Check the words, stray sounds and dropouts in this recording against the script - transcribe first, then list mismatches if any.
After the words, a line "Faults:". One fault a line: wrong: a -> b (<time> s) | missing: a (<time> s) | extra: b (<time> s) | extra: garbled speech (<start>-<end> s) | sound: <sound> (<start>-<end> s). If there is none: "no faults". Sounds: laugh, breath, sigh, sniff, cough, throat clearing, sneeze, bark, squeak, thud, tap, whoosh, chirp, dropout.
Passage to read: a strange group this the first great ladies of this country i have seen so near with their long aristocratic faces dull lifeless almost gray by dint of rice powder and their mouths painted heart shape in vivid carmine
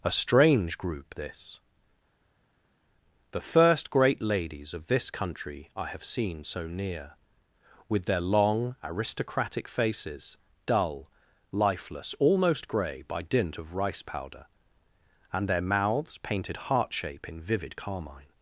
a strange group this the first great ladies of this country i have seen so near with their long aristocratic faces dull lifeless almost gray by dint of rice powder and their mouths painted heart shape in vivid carmine
Faults:
no faults